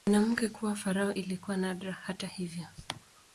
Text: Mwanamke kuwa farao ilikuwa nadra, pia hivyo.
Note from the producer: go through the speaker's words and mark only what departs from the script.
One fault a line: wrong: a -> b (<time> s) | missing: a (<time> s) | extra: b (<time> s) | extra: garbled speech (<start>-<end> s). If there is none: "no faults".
wrong: pia -> hata (1.9 s)